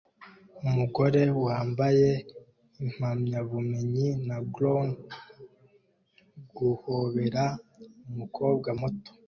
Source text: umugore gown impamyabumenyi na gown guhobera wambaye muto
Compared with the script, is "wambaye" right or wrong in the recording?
wrong